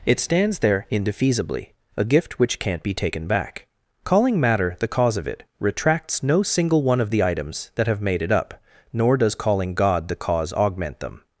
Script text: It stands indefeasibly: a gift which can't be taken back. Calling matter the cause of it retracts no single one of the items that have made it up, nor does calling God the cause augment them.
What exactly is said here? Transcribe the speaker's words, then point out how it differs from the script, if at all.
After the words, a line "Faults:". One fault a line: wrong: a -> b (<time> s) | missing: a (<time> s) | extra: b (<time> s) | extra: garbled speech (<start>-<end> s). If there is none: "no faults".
It stands there indefeasibly: a gift which can't be taken back. Calling matter the cause of it retracts no single one of the items that have made it up, nor does calling God the cause augment them.
Faults:
extra: there (0.6 s)